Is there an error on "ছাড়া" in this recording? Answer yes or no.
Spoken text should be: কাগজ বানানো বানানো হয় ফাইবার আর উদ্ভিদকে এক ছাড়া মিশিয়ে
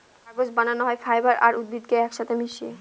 yes